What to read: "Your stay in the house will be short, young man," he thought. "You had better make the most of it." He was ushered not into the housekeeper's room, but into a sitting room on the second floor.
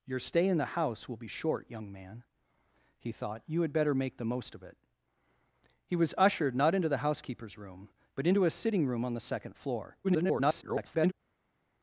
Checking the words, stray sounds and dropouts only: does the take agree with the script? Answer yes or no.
no